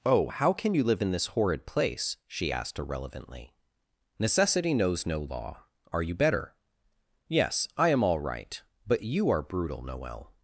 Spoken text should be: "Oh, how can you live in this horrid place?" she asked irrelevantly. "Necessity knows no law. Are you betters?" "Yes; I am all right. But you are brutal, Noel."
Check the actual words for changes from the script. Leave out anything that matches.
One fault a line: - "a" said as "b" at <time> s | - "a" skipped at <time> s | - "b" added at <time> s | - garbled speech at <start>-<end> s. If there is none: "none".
- "betters" said as "better" at 6.1 s